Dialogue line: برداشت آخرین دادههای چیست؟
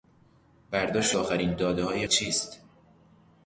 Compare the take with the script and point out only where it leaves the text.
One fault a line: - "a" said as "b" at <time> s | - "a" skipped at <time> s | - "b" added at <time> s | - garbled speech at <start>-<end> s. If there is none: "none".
none